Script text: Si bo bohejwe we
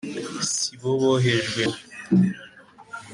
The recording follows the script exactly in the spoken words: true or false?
true